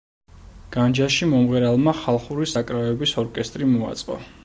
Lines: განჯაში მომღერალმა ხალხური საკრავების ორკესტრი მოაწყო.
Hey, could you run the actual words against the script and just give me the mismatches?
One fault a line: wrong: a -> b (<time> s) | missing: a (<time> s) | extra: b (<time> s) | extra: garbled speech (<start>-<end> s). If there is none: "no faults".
no faults